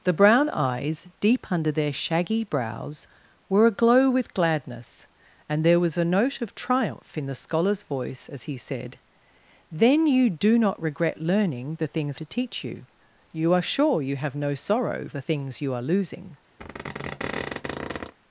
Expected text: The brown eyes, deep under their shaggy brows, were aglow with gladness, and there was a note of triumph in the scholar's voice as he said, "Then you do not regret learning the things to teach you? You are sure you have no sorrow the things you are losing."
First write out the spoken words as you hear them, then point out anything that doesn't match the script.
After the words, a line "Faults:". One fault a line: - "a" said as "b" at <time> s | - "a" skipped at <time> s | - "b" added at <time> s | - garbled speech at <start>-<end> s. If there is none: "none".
The brown eyes, deep under their shaggy brows, were aglow with gladness, and there was a note of triumph in the scholar's voice as he said, "Then you do not regret learning the things to teach you? You are sure you have no sorrow the things you are losing."
Faults:
none